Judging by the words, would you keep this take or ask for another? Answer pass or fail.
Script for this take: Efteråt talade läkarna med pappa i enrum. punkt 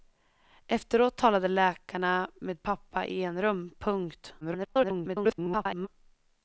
fail